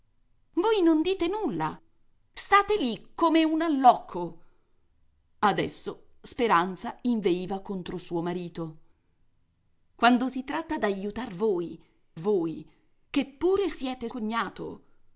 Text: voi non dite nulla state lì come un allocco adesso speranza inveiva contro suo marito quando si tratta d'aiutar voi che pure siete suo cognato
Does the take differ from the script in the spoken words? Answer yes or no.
yes